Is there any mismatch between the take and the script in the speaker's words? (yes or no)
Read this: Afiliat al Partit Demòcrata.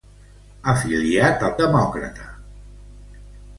yes